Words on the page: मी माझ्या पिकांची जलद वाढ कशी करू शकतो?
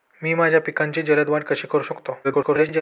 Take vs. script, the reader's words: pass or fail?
fail